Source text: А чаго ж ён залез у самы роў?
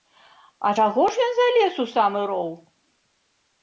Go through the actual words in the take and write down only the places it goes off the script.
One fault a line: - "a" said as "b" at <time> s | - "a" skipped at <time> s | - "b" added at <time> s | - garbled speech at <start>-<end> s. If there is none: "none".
none